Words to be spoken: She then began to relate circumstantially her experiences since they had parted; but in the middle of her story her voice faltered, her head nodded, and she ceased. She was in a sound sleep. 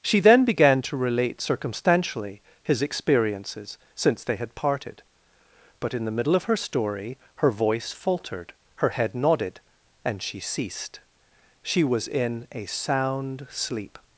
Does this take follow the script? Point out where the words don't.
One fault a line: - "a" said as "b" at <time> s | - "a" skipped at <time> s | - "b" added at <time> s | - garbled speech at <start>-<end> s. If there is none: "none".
- "her" said as "his" at 2.6 s